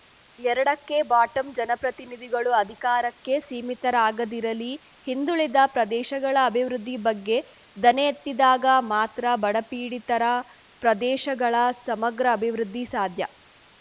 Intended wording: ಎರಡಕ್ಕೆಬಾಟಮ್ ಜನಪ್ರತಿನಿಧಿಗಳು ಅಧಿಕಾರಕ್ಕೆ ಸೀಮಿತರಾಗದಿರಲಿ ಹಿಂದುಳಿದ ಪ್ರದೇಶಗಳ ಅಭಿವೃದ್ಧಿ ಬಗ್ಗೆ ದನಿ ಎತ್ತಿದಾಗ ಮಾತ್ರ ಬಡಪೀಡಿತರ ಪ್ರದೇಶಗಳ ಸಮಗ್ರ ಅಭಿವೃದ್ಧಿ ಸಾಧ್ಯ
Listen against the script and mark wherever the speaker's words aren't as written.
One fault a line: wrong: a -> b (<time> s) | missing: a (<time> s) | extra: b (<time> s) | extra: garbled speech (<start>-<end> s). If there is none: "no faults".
no faults